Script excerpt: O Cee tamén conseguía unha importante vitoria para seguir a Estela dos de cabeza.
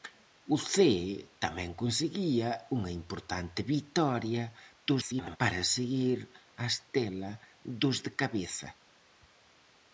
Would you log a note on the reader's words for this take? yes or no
yes